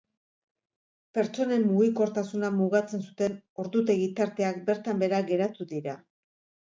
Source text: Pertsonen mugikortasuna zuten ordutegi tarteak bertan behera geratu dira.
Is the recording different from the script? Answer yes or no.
yes